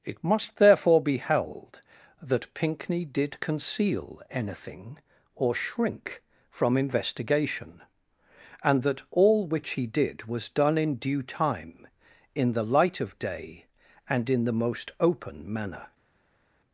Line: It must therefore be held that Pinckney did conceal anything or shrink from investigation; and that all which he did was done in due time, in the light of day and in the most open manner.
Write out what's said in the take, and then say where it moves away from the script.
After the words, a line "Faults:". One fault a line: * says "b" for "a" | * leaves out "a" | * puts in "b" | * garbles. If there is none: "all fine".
It must therefore be held that Pinckney did conceal anything or shrink from investigation; and that all which he did was done in due time, in the light of day and in the most open manner.
Faults:
all fine